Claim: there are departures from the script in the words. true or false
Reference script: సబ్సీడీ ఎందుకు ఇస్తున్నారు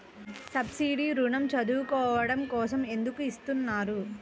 true